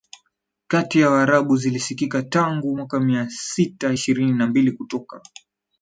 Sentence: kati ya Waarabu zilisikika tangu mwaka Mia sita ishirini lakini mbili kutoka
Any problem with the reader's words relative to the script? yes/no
yes